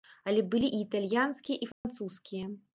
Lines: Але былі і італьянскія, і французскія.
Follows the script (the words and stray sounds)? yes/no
no